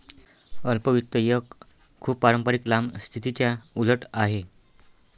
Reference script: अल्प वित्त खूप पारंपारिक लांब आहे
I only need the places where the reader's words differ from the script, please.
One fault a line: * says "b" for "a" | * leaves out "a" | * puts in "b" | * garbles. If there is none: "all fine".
* puts in "एक"
* puts in "स्थितीच्या उलट"